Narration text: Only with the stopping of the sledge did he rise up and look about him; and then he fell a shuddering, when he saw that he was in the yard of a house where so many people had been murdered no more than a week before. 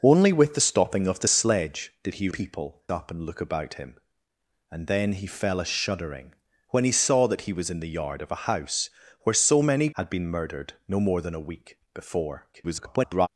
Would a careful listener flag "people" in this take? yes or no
yes